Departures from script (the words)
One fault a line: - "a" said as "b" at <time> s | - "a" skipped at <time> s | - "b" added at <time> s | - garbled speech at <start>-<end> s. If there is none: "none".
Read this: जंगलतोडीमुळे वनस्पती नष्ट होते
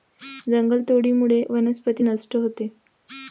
none